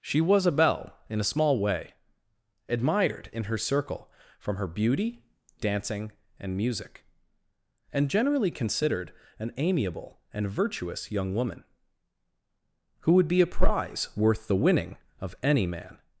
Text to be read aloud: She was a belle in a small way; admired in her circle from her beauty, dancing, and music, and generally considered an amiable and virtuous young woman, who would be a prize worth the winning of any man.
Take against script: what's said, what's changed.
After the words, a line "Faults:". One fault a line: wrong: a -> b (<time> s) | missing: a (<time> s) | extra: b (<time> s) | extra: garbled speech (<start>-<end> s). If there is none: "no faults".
She was a belle in a small way; admired in her circle from her beauty, dancing, and music, and generally considered an amiable and virtuous young woman, who would be a prize worth the winning of any man.
Faults:
no faults